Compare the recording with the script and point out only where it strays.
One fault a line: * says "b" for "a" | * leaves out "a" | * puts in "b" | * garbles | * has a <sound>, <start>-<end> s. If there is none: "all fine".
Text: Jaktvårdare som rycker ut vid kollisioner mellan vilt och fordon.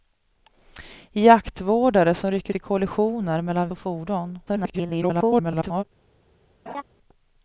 * leaves out "ut"
* leaves out "vilt"
* garbles
* has a laugh, 6.7-6.8 s